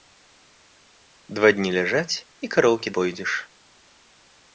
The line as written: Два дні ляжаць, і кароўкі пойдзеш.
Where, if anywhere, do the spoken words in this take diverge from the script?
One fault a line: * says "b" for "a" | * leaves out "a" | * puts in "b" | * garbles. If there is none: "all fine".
all fine